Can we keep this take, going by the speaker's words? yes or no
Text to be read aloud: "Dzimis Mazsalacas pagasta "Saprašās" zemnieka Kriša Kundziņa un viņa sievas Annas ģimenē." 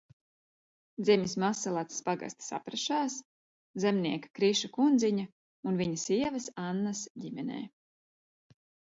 yes